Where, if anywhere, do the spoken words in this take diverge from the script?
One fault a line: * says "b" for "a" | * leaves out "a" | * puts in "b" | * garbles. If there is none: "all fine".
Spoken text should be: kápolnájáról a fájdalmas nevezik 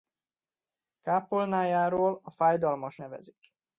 all fine